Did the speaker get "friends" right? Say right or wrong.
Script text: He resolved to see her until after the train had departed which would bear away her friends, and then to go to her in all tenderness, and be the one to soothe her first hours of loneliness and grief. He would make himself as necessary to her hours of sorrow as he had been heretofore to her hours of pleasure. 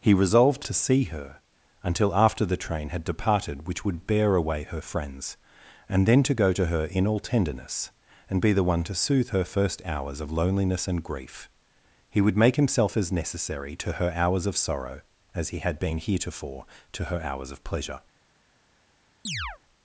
right